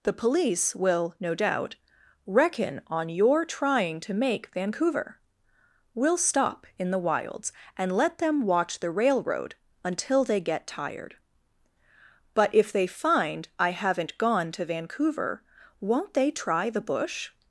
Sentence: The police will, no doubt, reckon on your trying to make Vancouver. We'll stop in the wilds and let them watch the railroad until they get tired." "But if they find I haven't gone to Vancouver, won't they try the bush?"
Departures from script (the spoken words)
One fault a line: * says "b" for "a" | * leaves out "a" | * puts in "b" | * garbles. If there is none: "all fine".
all fine